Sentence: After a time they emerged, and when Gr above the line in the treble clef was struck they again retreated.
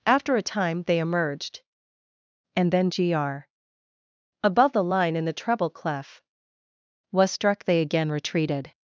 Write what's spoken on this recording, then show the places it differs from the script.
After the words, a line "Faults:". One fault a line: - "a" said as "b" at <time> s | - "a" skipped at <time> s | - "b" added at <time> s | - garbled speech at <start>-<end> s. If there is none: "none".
After a time they emerged, and then Gr above the line in the treble clef was struck they again retreated.
Faults:
- "when" said as "then" at 2.7 s